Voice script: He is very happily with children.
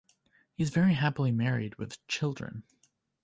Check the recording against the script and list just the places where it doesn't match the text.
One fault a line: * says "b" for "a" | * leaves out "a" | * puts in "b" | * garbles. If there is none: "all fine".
* puts in "married"